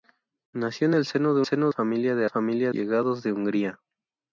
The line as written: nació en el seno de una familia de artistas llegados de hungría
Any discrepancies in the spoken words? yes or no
yes